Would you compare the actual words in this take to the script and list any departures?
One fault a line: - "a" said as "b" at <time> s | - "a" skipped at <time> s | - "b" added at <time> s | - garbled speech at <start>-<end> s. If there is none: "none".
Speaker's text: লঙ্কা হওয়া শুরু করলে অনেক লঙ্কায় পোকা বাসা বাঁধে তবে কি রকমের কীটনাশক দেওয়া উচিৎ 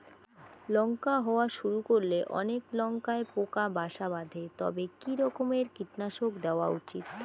none